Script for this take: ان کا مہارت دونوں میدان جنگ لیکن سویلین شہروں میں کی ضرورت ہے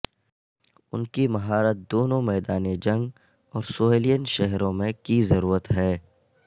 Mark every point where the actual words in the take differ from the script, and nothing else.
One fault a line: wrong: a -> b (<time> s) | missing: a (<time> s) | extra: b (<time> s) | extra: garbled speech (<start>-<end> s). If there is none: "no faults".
wrong: کا -> کی (1.1 s)
wrong: لیکن -> اور (3.5 s)